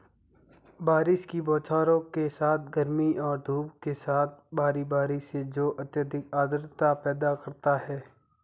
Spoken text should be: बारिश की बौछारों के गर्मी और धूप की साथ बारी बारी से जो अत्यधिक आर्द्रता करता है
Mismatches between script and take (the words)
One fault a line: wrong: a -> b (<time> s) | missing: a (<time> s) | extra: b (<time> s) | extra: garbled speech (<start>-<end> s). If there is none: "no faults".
extra: साथ (2.3 s)
wrong: की -> के (3.8 s)
extra: पैदा (7.0 s)